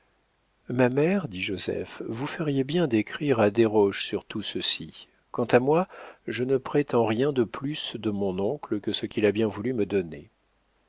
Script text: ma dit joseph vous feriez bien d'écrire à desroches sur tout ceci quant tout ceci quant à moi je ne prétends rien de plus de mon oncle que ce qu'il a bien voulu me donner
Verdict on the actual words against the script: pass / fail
fail